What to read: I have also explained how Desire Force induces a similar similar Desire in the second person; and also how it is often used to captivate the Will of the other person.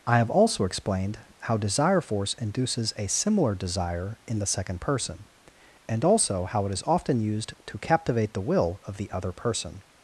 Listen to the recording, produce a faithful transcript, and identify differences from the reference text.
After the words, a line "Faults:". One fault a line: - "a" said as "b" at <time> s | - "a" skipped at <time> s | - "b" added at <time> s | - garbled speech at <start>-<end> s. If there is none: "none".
I have also explained how Desire Force induces a similar Desire in the second person; and also how it is often used to captivate the Will of the other person.
Faults:
- "similar" skipped at 3.5 s